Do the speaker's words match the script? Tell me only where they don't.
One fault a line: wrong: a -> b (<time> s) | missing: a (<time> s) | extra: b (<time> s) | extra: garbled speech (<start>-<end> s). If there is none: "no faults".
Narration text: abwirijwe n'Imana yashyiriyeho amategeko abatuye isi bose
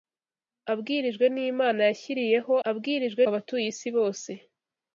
wrong: amategeko -> abwirijwe (2.7 s)